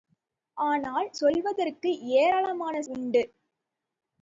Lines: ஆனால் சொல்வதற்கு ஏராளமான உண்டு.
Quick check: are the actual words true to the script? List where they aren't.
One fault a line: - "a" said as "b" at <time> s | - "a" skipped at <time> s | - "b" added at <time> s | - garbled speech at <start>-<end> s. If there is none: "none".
none